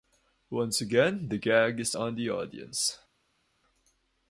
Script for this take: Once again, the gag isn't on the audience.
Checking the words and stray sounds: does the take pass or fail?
fail